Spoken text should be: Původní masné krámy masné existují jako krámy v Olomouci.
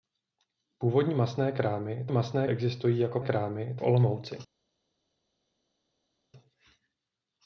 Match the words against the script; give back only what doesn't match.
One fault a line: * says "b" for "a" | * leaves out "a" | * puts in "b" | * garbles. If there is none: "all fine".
all fine